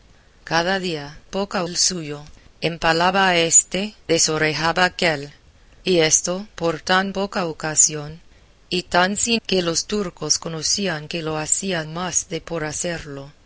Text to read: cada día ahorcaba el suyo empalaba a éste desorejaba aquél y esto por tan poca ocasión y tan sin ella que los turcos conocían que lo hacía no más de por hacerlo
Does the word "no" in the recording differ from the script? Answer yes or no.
yes